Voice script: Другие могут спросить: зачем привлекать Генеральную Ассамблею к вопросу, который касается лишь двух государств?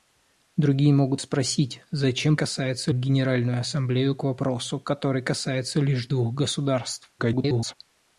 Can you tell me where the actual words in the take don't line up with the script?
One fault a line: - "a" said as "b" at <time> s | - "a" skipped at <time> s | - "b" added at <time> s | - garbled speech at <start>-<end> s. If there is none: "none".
- "привлекать" said as "касается" at 2.3 s
- garbled speech at 7.2-7.7 s